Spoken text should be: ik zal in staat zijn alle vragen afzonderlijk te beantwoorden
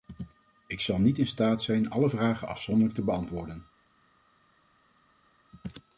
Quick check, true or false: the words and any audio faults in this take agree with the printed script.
false